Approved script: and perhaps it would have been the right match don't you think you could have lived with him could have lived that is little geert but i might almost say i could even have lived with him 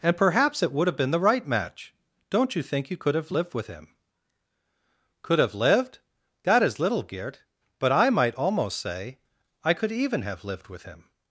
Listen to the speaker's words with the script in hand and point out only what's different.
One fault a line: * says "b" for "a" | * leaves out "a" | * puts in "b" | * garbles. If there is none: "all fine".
all fine